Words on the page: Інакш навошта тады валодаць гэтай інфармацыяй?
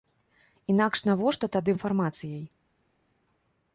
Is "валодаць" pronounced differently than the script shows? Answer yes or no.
yes